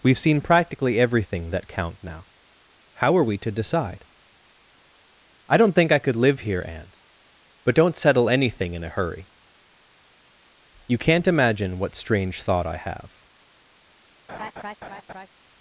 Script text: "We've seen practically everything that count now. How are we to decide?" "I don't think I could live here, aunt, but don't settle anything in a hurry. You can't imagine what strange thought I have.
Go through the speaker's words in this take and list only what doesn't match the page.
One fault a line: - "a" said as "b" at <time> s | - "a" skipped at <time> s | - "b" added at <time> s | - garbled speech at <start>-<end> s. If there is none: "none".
none